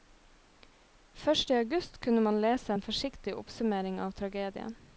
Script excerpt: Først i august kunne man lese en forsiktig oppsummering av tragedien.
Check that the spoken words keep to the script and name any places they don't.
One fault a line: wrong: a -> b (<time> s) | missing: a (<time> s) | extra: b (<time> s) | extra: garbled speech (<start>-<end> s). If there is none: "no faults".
no faults